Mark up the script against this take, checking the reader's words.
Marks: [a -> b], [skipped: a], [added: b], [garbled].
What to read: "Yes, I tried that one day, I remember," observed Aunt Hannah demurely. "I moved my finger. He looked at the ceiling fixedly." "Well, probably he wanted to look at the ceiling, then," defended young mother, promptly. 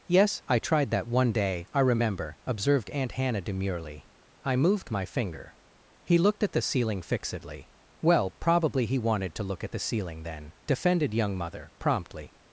"Yes, I tried that one day, I remember," observed Aunt Hannah demurely. "I moved my finger. He looked at the ceiling fixedly." "Well, probably he wanted to look at the ceiling, then," defended young mother, promptly.